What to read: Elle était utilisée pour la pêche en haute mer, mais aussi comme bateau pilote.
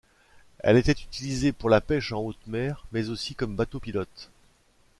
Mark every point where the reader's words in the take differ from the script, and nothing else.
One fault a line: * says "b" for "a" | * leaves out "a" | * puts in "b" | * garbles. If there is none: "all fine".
all fine